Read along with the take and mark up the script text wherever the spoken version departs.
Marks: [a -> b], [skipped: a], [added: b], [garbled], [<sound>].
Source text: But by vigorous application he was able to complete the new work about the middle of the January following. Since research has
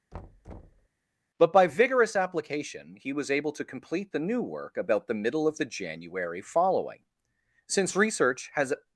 [thud] But by vigorous application he was able to complete the new work about the middle of the January following. Since research has